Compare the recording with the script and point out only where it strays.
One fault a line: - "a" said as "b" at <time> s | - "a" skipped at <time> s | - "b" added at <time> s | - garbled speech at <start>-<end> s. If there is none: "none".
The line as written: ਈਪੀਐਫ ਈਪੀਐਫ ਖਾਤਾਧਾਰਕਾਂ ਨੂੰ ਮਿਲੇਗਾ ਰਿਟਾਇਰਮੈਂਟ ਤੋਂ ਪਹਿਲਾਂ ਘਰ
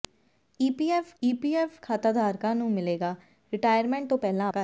none